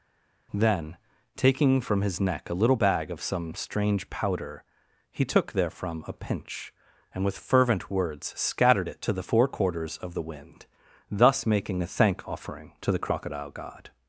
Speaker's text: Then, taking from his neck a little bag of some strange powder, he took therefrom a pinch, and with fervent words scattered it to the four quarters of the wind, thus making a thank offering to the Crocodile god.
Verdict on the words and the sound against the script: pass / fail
pass